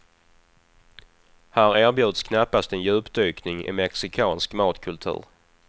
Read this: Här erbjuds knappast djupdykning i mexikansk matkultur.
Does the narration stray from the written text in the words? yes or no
yes